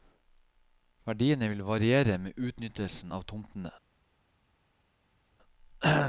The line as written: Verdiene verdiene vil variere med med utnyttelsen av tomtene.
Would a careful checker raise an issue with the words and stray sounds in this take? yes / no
yes